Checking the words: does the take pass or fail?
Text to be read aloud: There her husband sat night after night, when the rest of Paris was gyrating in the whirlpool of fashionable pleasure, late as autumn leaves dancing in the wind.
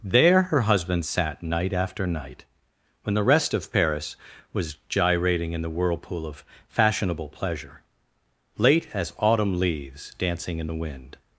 pass